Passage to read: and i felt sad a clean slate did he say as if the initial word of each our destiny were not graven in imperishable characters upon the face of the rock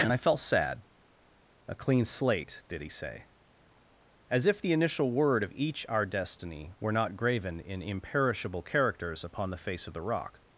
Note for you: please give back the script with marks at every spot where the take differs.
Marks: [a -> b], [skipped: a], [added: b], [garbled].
and i felt sad a clean slate did he say as if the initial word of each our destiny were not graven in imperishable characters upon the face of the rock